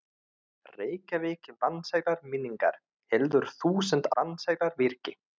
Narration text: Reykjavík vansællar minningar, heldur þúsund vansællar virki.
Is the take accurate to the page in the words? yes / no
yes